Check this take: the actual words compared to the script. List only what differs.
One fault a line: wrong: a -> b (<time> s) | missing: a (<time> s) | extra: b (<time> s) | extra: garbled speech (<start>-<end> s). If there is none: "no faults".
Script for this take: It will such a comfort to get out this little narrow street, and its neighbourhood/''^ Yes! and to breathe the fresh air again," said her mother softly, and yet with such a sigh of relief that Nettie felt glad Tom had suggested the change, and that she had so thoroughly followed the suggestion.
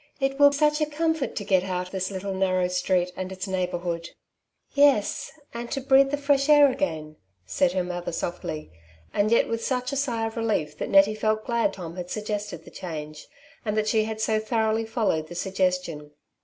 no faults